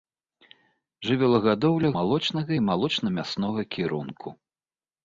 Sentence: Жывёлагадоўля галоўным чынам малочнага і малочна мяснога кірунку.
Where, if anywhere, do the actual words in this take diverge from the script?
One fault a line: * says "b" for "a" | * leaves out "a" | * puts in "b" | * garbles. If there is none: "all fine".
* leaves out "галоўным чынам"